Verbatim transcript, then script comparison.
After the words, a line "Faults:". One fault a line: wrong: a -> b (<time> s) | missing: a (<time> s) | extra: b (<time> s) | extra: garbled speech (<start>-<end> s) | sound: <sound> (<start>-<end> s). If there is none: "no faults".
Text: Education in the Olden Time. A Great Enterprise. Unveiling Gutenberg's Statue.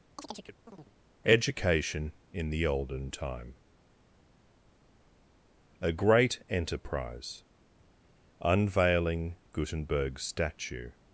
Education in the Olden Time. A Great Enterprise. Unveiling Gutenberg's Statue.
Faults:
sound: chirp (0.2-0.9 s)